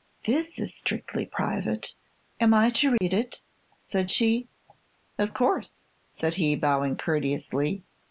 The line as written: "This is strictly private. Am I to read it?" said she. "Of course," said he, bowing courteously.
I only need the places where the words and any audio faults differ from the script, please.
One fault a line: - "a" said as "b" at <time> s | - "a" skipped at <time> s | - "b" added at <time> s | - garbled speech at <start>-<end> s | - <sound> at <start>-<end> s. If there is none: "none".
- dropout at 3.0-3.0 s